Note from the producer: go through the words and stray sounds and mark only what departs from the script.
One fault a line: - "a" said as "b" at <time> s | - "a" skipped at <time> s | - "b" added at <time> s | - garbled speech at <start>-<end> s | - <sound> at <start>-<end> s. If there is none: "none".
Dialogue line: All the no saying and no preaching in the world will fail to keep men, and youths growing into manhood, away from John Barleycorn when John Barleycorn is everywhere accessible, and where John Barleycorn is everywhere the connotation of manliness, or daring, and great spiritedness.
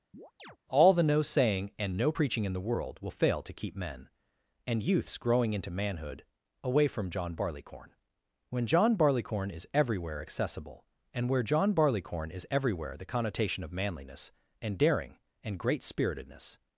- chirp at 0.1-0.6 s
- "or" said as "and" at 14.6 s